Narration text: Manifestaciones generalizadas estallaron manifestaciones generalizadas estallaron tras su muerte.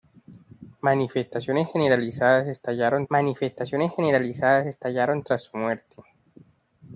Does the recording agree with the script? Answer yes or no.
yes